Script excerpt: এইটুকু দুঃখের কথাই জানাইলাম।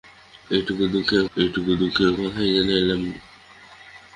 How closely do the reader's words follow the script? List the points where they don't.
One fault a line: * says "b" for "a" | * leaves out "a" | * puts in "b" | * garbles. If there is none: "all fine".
* puts in "এইটুকু দুঃখের"